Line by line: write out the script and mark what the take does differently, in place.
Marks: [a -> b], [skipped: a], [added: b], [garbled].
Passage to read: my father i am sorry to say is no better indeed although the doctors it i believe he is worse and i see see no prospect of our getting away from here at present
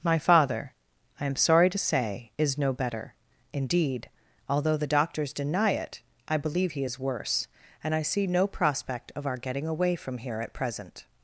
my father i am sorry to say is no better indeed although the doctors [added: deny] it i believe he is worse and i see [skipped: see] no prospect of our getting away from here at present